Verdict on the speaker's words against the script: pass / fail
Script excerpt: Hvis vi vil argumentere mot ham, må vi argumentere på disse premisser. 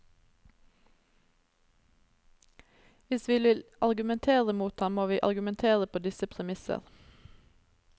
pass